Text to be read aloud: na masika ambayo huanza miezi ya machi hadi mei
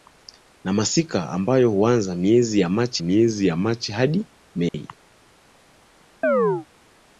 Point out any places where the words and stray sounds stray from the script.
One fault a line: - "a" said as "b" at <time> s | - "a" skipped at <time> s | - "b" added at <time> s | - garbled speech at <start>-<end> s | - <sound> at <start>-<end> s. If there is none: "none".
- "miezi ya machi" added at 3.0 s
- dropout at 4.7-4.7 s
- chirp at 6.2-6.7 s